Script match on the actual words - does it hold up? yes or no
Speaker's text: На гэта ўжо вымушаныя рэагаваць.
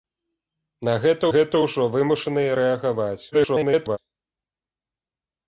no